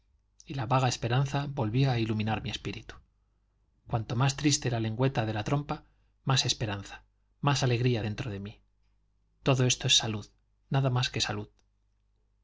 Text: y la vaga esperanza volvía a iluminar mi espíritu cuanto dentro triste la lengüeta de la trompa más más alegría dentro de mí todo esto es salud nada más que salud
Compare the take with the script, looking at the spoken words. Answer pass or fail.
fail